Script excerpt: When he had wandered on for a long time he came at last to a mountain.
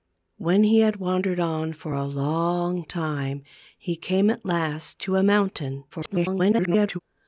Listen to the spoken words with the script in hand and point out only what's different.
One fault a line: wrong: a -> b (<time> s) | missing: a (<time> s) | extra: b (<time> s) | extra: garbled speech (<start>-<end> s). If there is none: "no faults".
extra: garbled speech (5.9-7.0 s)